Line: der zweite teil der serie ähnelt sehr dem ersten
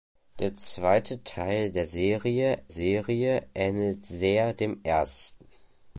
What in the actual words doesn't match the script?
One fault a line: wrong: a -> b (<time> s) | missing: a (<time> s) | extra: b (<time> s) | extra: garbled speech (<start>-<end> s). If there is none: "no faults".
extra: serie (2.7 s)